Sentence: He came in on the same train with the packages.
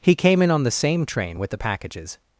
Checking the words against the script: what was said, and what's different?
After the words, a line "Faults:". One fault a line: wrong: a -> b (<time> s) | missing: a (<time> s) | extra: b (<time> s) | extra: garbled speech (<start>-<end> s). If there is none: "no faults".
He came in on the same train with the packages.
Faults:
no faults